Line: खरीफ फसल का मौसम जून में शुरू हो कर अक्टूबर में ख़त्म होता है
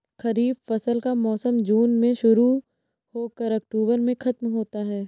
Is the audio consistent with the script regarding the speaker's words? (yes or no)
yes